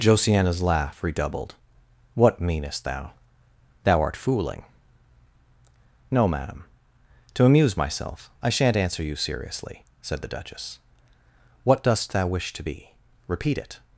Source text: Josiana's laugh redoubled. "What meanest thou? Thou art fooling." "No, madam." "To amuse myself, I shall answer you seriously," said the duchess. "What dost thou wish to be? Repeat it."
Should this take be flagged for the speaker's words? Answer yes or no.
yes